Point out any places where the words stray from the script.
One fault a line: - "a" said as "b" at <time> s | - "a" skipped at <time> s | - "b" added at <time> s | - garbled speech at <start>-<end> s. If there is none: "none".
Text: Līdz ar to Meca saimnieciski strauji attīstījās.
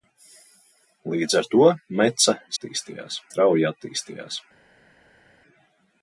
- "saimnieciski" said as "attīstījās" at 2.5 s